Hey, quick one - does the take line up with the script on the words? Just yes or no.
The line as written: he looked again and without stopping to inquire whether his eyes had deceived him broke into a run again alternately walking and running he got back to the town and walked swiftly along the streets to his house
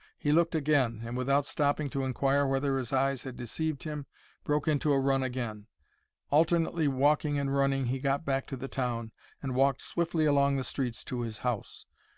yes